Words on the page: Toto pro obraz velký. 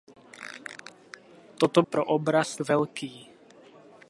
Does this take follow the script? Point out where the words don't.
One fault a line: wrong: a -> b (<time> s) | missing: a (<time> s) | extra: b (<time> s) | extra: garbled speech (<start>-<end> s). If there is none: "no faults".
no faults